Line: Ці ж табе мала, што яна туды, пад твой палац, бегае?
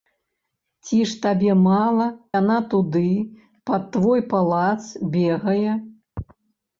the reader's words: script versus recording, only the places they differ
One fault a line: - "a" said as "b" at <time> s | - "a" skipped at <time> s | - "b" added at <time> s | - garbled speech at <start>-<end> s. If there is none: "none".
- "што" skipped at 2.1 s